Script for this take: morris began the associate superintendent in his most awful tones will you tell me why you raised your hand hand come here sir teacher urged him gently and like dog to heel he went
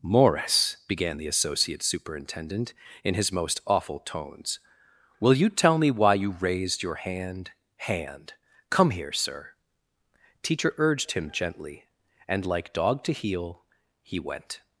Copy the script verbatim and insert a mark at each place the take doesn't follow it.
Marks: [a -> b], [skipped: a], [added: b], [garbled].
morris began the associate superintendent in his most awful tones will you tell me why you raised your hand hand come here sir teacher urged him gently and like dog to heel he went